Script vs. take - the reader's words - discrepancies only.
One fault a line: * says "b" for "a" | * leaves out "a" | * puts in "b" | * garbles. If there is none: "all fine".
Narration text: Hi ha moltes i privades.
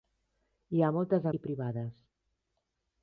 all fine